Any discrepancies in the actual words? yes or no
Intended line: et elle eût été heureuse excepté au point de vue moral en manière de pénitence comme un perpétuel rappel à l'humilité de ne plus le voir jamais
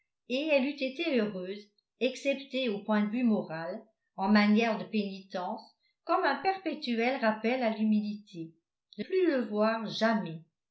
yes